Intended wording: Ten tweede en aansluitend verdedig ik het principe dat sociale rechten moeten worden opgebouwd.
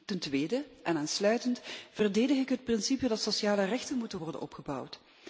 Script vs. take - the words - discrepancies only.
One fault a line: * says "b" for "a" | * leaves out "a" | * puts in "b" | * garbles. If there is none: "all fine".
all fine